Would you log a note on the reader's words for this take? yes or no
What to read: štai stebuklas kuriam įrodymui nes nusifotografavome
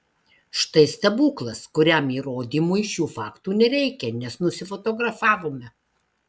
yes